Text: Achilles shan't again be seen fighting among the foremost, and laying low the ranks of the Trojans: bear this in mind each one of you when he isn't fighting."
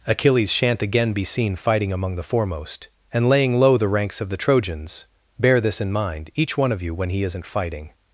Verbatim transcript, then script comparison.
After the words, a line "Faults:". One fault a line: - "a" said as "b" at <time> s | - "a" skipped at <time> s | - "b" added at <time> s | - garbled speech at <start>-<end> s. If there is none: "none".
Achilles shan't again be seen fighting among the foremost, and laying low the ranks of the Trojans: bear this in mind each one of you when he isn't fighting."
Faults:
none